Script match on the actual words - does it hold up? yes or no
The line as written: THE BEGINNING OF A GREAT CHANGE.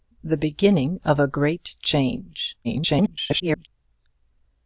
no